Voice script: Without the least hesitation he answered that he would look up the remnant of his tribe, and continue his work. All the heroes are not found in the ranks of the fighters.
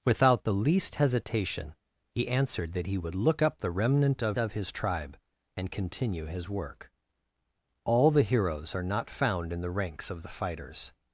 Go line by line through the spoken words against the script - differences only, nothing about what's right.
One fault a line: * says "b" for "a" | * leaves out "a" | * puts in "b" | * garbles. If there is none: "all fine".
* puts in "of"